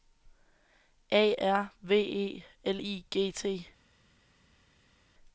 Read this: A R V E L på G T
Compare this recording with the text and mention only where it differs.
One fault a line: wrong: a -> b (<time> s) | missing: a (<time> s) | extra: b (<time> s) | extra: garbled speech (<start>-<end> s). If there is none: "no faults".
wrong: på -> I (2.8 s)